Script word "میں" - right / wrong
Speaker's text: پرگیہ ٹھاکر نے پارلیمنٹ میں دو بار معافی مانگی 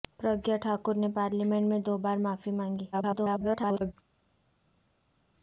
right